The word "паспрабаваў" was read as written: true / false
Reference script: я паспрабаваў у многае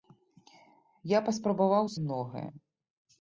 true